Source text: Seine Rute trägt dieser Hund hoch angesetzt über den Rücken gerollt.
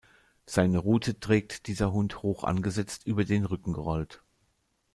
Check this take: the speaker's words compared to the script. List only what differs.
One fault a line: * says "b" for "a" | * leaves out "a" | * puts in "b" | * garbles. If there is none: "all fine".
all fine